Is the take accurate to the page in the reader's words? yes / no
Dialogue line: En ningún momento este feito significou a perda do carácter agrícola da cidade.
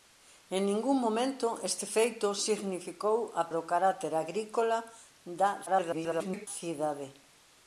no